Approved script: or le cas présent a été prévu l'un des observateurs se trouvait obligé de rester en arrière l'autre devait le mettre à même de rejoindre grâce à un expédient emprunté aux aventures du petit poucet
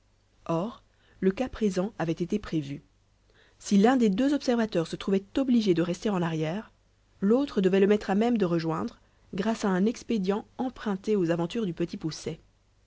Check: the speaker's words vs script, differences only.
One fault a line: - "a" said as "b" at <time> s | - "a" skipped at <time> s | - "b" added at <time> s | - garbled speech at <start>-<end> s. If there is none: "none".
- "a" said as "avait" at 2.0 s
- "si" added at 3.6 s
- "deux" added at 4.1 s